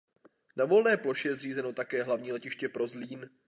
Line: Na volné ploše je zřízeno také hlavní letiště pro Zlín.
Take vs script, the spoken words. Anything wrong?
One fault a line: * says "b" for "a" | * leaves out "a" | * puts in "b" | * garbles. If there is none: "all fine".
all fine